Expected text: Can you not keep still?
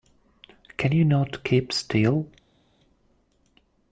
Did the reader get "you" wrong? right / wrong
right